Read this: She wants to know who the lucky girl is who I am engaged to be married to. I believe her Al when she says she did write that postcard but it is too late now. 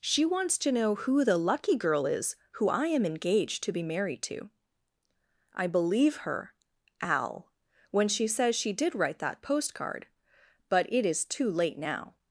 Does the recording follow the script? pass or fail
pass